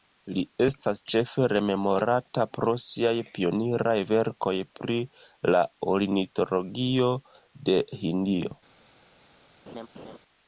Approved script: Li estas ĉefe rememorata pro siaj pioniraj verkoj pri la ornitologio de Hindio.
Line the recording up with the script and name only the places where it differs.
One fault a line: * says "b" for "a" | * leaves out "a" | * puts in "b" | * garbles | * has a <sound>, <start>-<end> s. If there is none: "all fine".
* has a laugh, 9.7-10.2 s